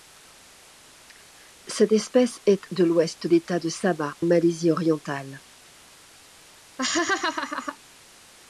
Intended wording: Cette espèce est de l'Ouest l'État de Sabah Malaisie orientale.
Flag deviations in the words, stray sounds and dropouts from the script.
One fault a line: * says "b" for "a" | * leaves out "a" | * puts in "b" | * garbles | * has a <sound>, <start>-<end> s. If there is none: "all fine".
* has a laugh, 6.8-7.8 s